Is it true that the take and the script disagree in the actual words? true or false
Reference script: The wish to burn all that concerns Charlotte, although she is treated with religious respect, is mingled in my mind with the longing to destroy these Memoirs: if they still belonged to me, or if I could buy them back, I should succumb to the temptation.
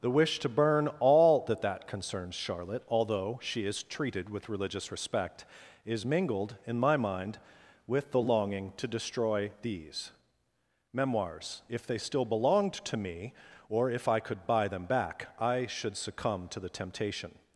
true